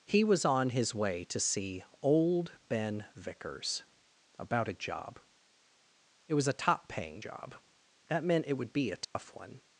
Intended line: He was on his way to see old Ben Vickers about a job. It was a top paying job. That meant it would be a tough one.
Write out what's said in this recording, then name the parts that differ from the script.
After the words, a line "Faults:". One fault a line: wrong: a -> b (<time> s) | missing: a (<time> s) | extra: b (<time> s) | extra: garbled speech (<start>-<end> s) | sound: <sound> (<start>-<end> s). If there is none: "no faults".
He was on his way to see old Ben Vickers about a job. It was a top paying job. That meant it would be a tough one.
Faults:
sound: dropout (9.0-9.2 s)